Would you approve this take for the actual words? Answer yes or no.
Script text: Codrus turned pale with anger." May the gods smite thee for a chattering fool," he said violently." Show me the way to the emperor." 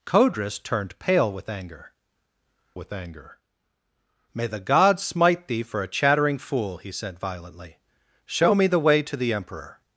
no